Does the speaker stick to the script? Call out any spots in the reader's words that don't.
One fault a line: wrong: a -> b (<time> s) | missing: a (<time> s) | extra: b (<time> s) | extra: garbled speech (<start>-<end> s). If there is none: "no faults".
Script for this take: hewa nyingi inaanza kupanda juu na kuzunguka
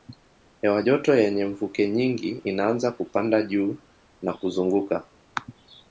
extra: joto yenye mvuke (0.8 s)